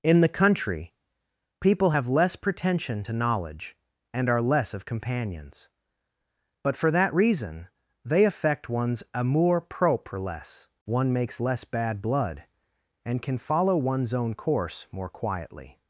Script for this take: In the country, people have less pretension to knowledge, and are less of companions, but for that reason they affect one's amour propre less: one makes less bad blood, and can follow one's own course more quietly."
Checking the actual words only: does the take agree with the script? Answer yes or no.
yes